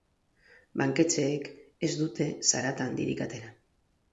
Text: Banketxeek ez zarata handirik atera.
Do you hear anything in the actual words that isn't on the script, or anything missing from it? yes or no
yes